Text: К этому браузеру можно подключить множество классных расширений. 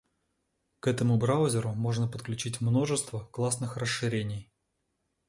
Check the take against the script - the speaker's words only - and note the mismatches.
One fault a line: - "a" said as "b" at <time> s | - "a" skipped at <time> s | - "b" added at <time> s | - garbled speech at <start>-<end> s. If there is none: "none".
none